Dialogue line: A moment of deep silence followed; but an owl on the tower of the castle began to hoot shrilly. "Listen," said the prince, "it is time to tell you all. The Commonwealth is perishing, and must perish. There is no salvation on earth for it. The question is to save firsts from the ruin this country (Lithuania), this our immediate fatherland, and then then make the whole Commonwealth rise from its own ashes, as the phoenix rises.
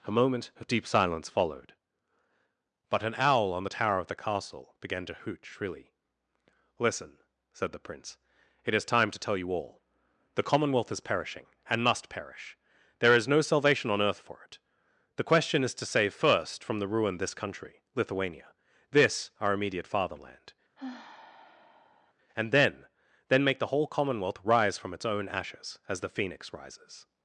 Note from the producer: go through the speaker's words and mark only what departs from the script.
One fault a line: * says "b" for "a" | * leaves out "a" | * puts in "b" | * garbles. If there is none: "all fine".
* says "first" for "firsts"